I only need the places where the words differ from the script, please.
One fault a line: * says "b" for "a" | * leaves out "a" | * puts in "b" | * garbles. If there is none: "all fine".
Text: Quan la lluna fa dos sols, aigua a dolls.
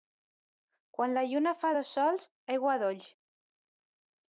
all fine